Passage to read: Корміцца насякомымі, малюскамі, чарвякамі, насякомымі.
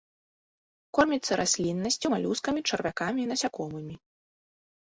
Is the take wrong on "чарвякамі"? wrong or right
right